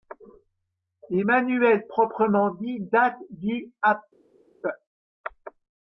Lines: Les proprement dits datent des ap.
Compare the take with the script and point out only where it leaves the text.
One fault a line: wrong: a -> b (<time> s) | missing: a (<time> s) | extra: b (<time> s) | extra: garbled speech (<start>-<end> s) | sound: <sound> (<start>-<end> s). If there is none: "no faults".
extra: manuels (1.2 s)
wrong: des -> du (3.3 s)